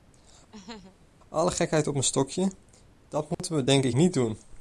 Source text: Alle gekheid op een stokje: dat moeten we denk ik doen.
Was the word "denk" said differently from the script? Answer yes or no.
no